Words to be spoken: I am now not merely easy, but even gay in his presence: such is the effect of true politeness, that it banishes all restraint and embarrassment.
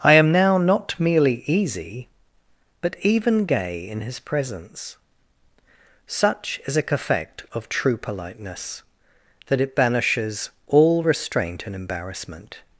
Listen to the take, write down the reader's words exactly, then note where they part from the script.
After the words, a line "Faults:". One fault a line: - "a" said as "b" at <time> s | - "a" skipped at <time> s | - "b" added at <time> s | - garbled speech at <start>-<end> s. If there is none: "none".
I am now not merely easy, but even gay in his presence: such is a effect of true politeness, that it banishes all restraint and embarrassment.
Faults:
- "the" said as "a" at 6.8 s